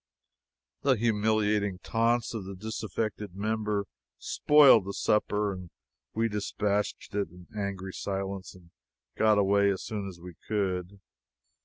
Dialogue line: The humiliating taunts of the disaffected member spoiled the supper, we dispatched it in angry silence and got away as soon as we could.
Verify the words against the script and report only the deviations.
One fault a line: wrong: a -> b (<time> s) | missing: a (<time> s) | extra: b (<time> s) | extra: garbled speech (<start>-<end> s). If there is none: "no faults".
extra: and (5.5 s)